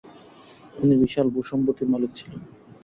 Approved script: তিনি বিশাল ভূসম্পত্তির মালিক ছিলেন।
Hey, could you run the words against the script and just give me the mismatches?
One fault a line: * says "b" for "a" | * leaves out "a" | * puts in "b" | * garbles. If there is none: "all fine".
all fine